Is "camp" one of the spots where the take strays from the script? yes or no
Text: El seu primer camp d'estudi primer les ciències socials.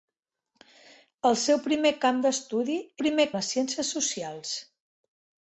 no